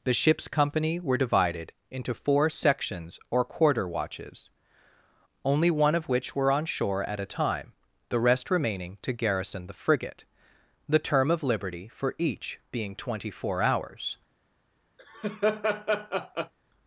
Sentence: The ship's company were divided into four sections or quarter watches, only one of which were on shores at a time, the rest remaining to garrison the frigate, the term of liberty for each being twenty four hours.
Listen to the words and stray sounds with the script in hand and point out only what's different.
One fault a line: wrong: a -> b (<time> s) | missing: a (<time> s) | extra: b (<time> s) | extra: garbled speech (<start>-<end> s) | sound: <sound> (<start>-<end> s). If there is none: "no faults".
wrong: shores -> shore (6.7 s)
sound: laugh (15.0-16.5 s)